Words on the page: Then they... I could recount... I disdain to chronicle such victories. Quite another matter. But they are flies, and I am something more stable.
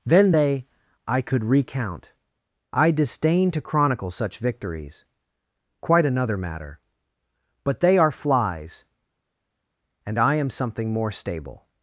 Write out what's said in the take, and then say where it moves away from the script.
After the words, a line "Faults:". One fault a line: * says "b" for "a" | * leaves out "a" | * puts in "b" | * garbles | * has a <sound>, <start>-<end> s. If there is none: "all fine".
Then they... I could recount... I disdain to chronicle such victories. Quite another matter. But they are flies, and I am something more stable.
Faults:
all fine